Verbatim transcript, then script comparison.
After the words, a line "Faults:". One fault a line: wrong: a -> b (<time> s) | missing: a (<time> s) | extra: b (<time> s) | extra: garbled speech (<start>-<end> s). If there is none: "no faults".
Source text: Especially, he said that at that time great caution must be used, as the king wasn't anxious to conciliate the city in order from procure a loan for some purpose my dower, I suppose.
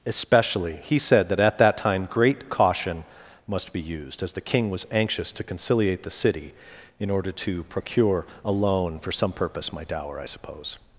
Especially, he said that at that time great caution must be used, as the king was anxious to conciliate the city in order to procure a loan for some purpose my dower, I suppose.
Faults:
wrong: wasn't -> was (4.7 s)
wrong: from -> to (7.3 s)